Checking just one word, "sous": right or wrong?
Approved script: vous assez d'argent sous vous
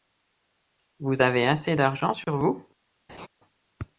wrong